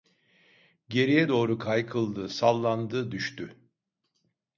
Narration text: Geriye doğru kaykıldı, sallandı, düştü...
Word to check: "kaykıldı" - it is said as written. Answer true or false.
true